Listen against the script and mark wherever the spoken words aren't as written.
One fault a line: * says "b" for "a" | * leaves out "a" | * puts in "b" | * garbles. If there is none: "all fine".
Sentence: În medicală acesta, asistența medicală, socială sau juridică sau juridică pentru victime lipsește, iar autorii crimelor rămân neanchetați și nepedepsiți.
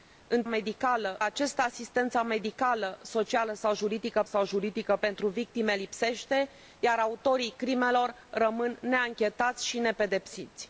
all fine